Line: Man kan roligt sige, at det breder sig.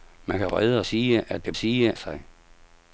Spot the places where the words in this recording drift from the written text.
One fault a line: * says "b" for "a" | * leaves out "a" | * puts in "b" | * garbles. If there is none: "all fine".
* says "breder" for "roligt"
* says "sige" for "breder"